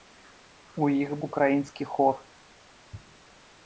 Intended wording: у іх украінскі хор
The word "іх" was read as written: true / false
true